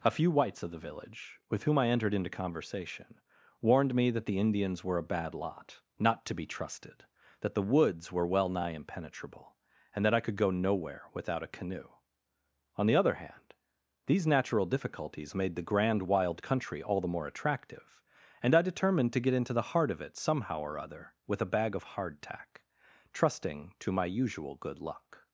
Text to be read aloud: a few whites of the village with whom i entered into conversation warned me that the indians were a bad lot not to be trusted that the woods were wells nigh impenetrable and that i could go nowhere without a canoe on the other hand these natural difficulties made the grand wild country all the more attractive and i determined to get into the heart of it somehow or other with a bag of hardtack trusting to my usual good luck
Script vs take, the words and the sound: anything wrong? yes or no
yes